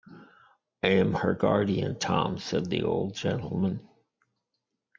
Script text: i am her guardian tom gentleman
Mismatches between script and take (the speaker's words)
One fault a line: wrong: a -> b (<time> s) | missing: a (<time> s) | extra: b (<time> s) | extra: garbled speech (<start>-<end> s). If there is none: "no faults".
extra: said the old (2.4 s)